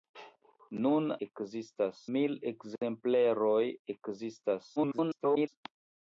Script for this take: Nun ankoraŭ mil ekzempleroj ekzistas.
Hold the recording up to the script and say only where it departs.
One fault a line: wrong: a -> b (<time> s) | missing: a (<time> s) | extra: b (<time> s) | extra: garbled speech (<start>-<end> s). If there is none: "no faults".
wrong: ankoraŭ -> ekzistas (1.3 s)
extra: garbled speech (4.8-5.5 s)